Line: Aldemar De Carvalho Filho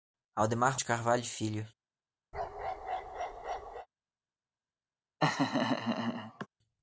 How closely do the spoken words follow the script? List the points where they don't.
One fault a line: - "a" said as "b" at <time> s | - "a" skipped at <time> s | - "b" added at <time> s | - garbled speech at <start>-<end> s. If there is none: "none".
none